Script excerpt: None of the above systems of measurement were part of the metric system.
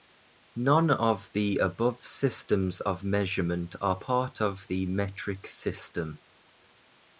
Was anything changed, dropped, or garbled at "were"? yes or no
yes